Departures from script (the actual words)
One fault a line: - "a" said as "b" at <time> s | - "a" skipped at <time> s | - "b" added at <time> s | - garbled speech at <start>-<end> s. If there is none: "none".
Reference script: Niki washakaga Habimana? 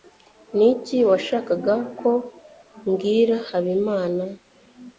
- "ko mbwira" added at 2.0 s